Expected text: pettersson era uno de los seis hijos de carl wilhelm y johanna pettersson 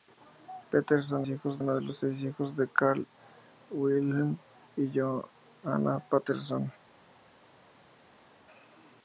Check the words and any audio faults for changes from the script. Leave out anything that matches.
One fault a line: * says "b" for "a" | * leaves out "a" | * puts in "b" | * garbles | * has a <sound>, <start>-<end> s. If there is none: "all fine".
* says "hijos" for "era"